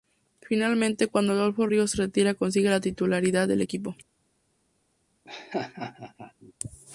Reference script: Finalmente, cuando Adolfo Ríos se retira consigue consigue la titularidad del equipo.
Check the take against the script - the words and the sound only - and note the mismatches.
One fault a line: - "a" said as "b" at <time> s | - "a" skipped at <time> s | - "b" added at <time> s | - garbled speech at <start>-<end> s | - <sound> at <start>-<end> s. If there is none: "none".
- "consigue" skipped at 2.7 s
- laugh at 5.3-6.5 s